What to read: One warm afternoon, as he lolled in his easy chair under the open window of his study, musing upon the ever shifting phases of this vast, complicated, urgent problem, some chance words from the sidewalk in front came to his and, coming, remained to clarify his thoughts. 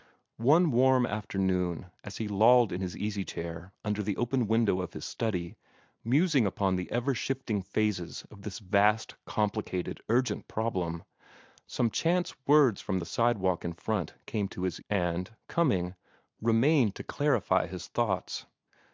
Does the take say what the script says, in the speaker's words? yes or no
yes